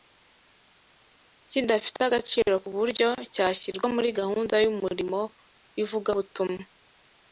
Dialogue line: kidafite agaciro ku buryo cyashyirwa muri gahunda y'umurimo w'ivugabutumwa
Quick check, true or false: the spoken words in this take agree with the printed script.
true